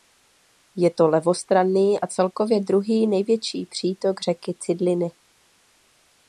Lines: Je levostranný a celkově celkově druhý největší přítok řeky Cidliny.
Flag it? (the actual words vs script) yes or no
yes